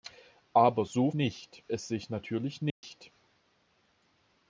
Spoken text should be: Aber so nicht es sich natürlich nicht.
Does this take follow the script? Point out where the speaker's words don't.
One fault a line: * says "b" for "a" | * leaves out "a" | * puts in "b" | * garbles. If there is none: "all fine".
all fine